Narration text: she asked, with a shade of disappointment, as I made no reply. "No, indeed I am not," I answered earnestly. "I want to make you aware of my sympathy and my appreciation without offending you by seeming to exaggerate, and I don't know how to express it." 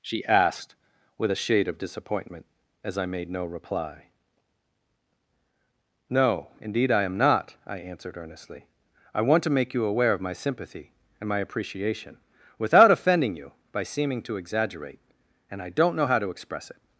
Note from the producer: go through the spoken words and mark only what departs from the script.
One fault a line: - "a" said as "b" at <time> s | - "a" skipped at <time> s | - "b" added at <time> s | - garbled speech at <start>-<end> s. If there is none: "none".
none